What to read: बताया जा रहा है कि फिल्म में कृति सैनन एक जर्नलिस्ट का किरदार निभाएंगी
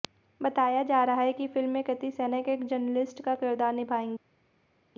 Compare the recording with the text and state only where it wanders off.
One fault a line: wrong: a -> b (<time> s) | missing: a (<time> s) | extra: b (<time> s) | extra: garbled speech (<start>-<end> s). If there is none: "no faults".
no faults